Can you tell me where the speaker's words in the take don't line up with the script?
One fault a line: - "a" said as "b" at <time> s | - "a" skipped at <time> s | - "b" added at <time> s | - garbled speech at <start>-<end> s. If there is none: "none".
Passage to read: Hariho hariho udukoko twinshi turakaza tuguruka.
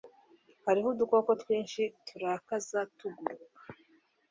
- "hariho" skipped at 0.9 s